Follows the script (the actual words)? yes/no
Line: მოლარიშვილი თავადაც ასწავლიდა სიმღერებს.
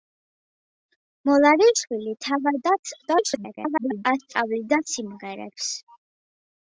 no